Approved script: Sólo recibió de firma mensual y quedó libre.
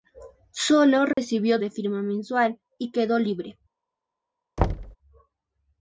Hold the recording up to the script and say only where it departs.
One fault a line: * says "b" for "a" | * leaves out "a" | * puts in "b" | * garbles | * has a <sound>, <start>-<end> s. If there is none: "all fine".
* has a dropout, 1.1-1.2 s
* has a thud, 4.6-5.0 s